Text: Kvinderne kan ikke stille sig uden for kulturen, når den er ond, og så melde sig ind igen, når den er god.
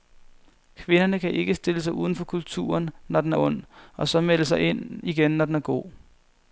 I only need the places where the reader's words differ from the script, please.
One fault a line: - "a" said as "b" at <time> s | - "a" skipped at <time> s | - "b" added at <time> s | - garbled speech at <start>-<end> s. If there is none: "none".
none